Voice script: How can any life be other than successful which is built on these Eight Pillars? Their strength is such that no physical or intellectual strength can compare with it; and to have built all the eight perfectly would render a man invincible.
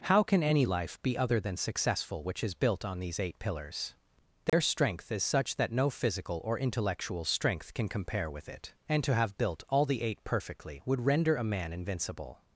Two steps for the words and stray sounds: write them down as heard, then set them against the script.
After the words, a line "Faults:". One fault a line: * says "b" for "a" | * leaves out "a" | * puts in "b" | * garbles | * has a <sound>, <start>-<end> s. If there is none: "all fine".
How can any life be other than successful which is built on these Eight Pillars? Their strength is such that no physical or intellectual strength can compare with it; and to have built all the eight perfectly would render a man invincible.
Faults:
* has a dropout, 4.5-4.5 s